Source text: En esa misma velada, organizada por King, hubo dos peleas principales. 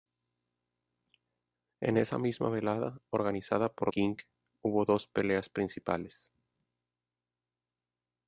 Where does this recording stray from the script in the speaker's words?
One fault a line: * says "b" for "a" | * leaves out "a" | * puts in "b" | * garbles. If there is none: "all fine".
all fine